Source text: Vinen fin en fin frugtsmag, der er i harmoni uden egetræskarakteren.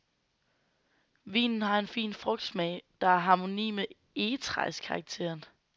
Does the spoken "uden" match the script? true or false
false